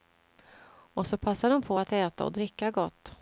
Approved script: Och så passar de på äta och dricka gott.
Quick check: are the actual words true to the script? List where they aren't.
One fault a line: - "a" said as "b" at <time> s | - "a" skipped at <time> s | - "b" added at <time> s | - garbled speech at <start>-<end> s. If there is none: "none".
- "att" added at 1.8 s